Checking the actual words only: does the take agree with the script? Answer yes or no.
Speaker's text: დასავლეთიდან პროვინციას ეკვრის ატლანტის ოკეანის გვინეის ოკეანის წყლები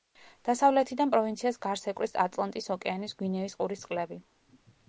no